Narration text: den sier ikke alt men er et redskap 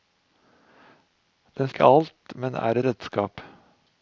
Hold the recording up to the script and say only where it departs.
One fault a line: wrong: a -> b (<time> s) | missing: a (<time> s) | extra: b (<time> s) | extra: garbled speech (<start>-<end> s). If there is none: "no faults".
missing: sier (1.7 s)
missing: et (2.8 s)